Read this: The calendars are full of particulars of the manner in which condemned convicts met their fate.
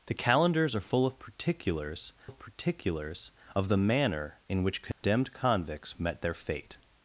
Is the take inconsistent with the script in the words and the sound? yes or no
yes